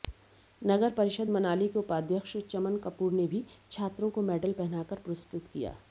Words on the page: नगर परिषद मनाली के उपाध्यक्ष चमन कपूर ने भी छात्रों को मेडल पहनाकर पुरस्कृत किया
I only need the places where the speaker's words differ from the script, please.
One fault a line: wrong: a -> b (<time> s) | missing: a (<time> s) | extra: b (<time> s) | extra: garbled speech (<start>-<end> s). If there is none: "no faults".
no faults